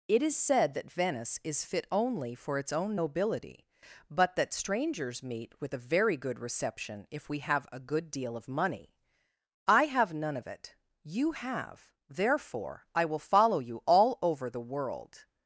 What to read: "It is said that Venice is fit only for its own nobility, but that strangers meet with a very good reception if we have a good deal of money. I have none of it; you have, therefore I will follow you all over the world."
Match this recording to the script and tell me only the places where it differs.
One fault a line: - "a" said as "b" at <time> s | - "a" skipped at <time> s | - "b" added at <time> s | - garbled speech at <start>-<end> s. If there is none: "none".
none